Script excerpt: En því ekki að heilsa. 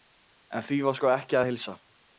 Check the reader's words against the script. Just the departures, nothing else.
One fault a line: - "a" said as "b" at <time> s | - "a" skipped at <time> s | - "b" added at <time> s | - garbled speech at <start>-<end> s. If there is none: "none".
- "var sko" added at 0.9 s